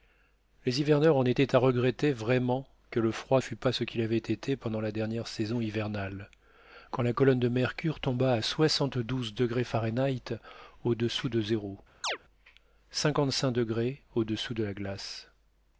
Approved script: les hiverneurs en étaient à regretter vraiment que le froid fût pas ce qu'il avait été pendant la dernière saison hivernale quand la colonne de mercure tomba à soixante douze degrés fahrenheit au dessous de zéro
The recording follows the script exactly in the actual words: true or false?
true